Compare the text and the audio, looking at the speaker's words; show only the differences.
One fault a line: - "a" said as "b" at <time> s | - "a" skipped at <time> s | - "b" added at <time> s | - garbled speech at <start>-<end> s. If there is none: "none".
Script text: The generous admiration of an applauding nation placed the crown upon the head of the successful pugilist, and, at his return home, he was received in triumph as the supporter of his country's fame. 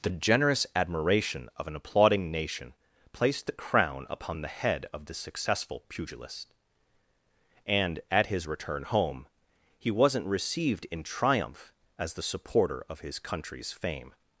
- "was" said as "wasn't" at 9.9 s